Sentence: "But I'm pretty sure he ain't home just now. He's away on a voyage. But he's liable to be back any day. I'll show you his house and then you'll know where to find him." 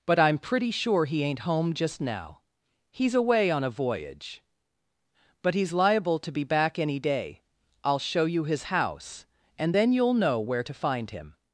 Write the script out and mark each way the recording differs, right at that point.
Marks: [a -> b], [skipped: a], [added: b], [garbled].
"But I'm pretty sure he ain't home just now. He's away on a voyage. But he's liable to be back any day. I'll show you his house and then you'll know where to find him."